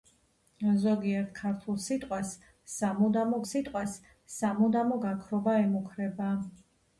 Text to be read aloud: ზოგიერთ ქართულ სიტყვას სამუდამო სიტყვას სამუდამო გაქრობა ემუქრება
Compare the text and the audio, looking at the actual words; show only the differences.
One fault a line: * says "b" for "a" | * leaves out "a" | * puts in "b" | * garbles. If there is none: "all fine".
all fine